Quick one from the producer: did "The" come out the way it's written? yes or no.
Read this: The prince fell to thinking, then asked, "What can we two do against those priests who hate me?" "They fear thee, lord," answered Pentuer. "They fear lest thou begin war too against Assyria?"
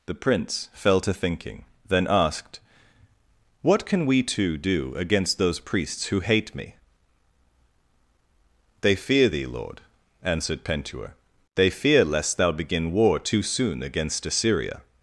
yes